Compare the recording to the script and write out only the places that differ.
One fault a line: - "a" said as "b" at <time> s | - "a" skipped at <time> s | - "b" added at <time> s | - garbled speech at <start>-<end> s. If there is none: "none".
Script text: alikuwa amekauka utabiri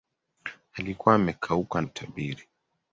none